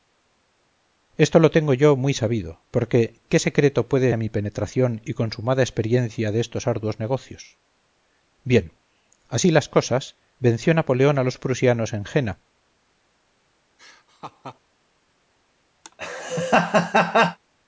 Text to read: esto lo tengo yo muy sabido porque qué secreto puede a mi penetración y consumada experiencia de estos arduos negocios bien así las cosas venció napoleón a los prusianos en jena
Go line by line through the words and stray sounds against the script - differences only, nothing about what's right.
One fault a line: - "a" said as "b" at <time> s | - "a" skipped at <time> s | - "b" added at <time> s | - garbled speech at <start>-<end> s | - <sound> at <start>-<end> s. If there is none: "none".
- laugh at 13.8-14.6 s
- laugh at 15.8-17.4 s